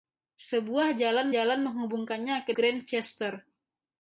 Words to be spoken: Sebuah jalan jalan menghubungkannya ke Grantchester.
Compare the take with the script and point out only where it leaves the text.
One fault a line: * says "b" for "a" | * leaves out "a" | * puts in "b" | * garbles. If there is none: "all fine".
all fine